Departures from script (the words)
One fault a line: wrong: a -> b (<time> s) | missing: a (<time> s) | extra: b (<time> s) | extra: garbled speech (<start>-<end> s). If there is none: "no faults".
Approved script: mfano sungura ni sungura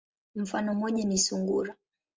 wrong: sungura -> moja (0.7 s)